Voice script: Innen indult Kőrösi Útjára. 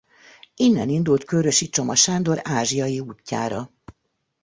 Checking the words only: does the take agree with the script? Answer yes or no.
no